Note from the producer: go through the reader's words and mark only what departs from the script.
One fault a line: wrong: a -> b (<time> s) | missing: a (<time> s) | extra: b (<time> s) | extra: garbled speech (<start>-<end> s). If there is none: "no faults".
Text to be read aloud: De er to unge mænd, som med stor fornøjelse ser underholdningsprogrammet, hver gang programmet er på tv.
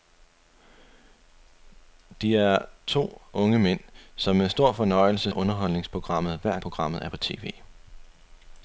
missing: ser (5.3 s)
missing: gang (6.6 s)